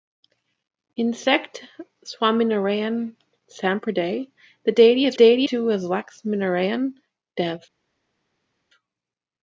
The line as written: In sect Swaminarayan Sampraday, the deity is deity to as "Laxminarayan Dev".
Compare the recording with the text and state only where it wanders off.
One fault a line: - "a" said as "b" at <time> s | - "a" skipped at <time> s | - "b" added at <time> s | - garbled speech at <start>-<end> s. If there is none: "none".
none